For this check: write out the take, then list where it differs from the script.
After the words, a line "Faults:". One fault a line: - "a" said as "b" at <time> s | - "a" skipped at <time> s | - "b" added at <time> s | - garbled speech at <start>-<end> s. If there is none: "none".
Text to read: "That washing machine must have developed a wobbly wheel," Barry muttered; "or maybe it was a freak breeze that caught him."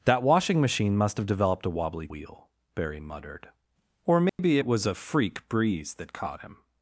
"That washing machine must have developed a wobbly wheel," Barry muttered; "or maybe it was a freak breeze that caught him."
Faults:
none